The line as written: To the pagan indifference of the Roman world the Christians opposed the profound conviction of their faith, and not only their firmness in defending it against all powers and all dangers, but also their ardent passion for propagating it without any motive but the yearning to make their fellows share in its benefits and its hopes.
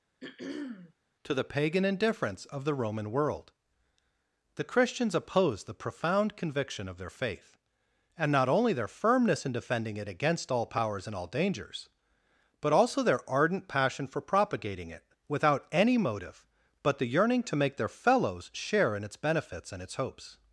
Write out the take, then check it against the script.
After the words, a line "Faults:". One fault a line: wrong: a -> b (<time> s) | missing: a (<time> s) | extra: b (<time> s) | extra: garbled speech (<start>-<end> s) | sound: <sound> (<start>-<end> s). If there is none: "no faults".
To the pagan indifference of the Roman world the Christians opposed the profound conviction of their faith, and not only their firmness in defending it against all powers and all dangers, but also their ardent passion for propagating it without any motive but the yearning to make their fellows share in its benefits and its hopes.
Faults:
sound: throat clearing (0.2-0.9 s)